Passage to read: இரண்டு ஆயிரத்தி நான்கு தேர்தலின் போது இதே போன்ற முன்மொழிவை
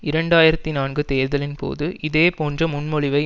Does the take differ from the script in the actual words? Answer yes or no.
no